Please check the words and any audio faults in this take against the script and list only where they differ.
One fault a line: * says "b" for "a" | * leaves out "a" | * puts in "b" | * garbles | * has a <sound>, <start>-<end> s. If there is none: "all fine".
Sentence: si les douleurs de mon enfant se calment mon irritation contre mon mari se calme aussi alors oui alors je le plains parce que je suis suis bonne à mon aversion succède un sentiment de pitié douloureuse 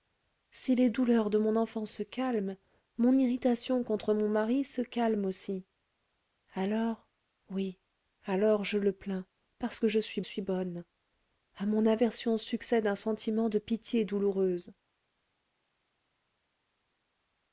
all fine